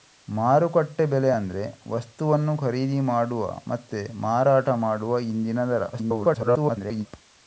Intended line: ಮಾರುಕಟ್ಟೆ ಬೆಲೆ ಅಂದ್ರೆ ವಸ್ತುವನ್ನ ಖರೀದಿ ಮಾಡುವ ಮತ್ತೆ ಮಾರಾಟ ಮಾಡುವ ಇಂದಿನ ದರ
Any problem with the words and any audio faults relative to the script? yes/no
yes